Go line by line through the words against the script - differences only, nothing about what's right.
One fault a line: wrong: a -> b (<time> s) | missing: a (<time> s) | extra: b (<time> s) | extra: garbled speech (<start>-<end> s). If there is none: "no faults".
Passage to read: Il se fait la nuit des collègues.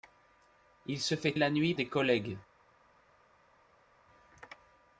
no faults